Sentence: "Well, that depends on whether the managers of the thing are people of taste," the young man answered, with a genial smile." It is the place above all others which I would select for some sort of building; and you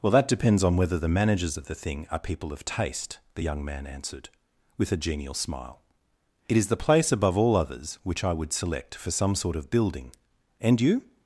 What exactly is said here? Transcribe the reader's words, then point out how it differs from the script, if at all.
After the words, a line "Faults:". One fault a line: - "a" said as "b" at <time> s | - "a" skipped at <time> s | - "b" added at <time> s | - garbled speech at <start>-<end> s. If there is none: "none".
"Well, that depends on whether the managers of the thing are people of taste," the young man answered, with a genial smile." It is the place above all others which I would select for some sort of building; and you
Faults:
none